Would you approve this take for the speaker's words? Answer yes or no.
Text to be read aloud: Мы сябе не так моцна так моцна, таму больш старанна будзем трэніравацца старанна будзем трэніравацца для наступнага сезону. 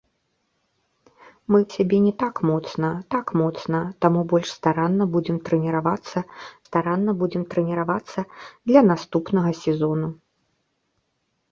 yes